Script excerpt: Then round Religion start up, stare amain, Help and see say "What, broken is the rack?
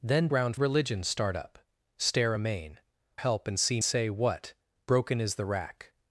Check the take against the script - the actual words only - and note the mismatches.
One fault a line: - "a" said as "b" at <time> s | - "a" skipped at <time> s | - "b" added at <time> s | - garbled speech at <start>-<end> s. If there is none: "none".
none